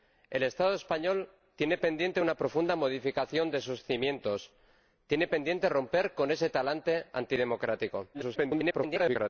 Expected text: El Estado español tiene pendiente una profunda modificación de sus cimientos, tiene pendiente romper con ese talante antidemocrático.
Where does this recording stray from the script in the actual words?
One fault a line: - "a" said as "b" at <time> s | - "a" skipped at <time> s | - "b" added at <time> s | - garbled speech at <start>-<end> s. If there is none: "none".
- garbled speech at 8.1-9.3 s